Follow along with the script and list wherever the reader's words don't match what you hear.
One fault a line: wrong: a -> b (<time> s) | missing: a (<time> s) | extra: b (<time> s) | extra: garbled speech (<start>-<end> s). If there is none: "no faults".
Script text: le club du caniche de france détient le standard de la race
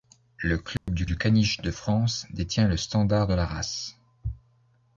extra: du (1.0 s)